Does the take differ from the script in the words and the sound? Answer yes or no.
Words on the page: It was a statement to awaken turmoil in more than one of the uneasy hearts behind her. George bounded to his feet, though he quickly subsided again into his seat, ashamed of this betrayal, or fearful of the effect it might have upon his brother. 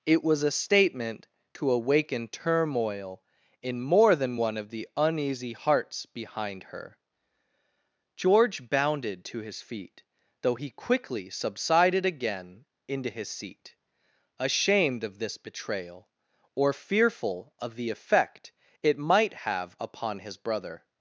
no